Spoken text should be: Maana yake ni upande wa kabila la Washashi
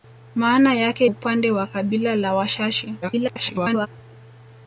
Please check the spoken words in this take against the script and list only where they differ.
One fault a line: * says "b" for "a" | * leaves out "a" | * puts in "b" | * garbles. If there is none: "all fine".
* leaves out "ni"
* garbles